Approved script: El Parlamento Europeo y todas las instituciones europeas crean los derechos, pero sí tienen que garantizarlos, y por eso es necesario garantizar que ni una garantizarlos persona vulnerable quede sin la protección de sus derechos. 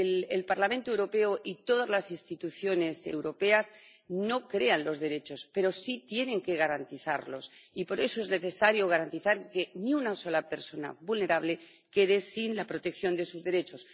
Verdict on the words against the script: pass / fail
fail